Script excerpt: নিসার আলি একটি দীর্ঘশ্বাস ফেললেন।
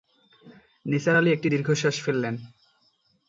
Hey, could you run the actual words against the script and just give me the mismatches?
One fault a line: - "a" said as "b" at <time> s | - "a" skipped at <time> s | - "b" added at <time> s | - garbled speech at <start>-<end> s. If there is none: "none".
none